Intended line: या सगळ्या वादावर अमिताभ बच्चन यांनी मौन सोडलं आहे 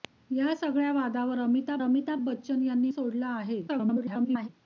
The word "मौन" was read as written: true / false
false